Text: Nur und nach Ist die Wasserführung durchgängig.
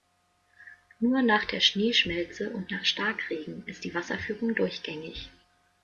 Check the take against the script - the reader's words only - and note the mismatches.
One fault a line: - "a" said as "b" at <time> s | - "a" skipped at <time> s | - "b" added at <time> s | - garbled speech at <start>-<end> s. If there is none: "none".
- "nach der Schneeschmelze" added at 1.2 s
- "Starkregen" added at 2.9 s